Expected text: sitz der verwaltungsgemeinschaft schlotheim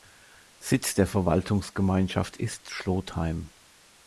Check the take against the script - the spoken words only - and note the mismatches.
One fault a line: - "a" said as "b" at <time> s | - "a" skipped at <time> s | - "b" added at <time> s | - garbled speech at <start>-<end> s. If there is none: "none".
- "ist" added at 2.4 s